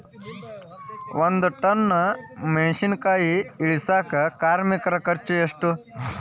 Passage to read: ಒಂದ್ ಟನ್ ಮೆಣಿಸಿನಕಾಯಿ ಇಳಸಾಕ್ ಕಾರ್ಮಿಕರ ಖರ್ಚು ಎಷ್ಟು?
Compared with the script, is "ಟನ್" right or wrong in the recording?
right